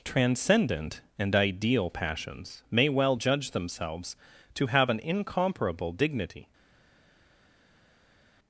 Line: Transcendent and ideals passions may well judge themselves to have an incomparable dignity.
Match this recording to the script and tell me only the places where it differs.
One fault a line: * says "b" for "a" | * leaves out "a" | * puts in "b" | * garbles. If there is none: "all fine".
* says "ideal" for "ideals"